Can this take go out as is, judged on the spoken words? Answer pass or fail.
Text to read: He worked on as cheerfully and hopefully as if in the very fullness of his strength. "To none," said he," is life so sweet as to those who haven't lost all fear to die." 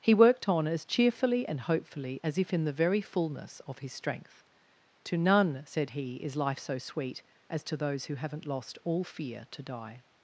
pass